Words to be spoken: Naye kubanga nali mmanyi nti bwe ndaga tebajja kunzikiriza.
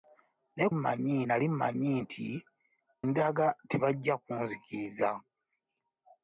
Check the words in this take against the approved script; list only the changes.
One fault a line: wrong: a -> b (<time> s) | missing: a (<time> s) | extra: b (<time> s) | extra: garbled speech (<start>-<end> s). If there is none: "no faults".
wrong: kubanga -> mmanyi (0.8 s)
missing: bwe (2.3 s)